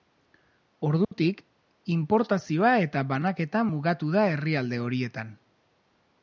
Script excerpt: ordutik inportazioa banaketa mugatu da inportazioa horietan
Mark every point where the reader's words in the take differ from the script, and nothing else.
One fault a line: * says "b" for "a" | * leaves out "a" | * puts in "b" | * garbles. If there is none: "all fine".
* puts in "eta"
* says "herrialde" for "inportazioa"